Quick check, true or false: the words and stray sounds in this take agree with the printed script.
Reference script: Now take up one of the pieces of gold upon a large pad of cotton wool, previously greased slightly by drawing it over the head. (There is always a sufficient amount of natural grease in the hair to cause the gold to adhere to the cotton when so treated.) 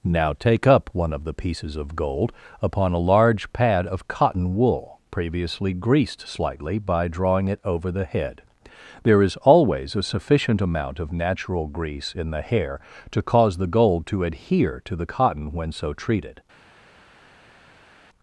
true